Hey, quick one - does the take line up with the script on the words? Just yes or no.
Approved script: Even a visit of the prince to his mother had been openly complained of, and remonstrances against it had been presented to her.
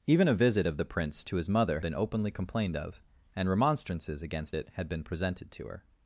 no